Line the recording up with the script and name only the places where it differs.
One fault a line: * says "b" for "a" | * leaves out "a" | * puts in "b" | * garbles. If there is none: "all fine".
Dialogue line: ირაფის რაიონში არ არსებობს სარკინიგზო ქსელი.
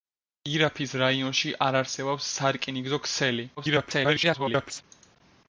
* garbles